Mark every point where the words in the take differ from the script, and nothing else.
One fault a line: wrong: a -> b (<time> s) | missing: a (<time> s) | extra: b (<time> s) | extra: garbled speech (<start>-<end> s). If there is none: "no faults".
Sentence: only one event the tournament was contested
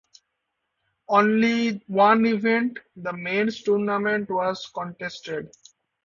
extra: men's (3.1 s)